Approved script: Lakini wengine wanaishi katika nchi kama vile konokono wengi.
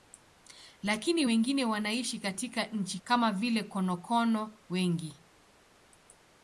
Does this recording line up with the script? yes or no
yes